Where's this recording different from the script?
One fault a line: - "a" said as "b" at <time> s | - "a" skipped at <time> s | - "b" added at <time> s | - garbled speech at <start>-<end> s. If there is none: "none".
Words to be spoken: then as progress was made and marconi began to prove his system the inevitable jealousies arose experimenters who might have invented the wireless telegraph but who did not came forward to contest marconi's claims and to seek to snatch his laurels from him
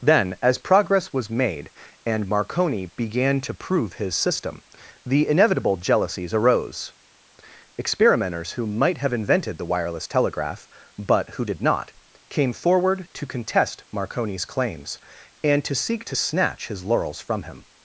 none